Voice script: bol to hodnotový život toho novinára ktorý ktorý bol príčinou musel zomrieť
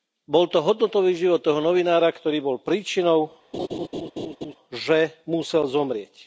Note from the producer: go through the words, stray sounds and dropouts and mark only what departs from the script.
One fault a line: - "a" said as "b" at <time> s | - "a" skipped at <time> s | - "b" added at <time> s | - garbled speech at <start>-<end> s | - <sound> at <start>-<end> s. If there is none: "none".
- "ktorý" skipped at 2.4 s
- laugh at 3.5-4.6 s
- "že" added at 4.7 s